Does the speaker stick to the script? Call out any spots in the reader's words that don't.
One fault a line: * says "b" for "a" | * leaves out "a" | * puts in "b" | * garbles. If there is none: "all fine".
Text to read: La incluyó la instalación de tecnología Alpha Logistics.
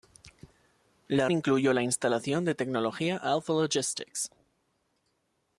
all fine